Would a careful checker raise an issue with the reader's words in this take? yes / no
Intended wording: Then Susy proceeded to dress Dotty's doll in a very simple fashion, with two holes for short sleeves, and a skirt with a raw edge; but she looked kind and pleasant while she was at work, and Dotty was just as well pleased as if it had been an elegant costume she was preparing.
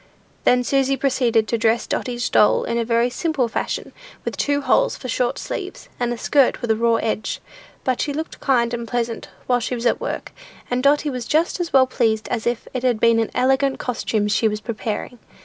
no